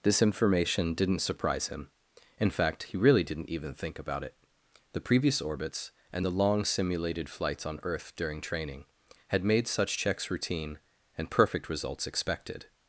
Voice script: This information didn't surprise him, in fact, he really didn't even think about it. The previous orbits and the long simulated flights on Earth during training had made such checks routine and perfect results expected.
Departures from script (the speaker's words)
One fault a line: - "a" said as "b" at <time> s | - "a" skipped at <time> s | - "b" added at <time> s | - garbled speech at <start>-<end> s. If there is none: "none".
none